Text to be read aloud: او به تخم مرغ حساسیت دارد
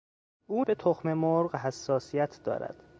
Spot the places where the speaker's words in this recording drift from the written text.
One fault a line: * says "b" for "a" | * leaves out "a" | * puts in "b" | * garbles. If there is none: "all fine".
all fine